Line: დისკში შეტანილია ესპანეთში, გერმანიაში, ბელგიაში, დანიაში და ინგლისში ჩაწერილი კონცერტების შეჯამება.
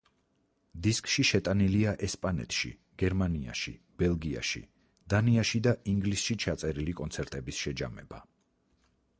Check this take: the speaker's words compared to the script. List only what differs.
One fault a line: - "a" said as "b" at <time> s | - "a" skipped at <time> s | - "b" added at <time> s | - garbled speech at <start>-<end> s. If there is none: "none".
none